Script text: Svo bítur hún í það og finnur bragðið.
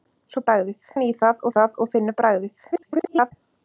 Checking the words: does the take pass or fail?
fail